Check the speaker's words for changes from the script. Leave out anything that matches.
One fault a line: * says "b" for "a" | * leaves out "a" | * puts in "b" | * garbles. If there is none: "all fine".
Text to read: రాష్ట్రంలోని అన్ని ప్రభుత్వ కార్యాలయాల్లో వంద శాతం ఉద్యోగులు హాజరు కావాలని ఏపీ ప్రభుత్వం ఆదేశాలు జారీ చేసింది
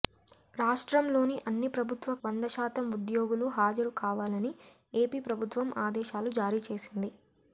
* leaves out "కార్యాలయాల్లో"